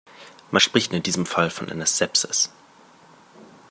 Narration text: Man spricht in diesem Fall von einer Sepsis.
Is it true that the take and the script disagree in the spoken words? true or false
false